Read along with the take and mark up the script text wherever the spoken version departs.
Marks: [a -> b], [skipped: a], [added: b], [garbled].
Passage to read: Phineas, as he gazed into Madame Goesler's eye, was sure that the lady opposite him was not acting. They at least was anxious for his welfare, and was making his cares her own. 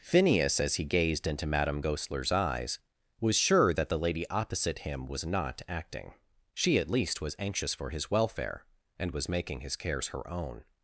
Phineas, as he gazed into Madame Goesler's [eye, -> eyes] was sure that the lady opposite him was not acting. [They -> She] at least was anxious for his welfare, and was making his cares her own.